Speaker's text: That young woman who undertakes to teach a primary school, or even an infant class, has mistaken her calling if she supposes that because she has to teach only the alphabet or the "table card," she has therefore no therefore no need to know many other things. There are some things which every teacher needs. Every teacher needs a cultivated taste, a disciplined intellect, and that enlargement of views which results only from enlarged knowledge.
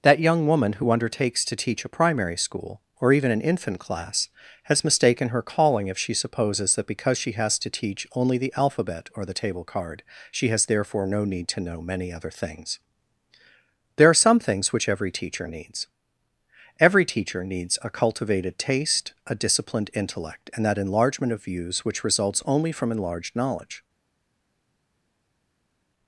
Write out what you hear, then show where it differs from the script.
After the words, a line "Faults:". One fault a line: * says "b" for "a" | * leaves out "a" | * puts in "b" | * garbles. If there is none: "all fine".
That young woman who undertakes to teach a primary school, or even an infant class, has mistaken her calling if she supposes that because she has to teach only the alphabet or the "table card," she has therefore no need to know many other things. There are some things which every teacher needs. Every teacher needs a cultivated taste, a disciplined intellect, and that enlargement of views which results only from enlarged knowledge.
Faults:
* leaves out "therefore no"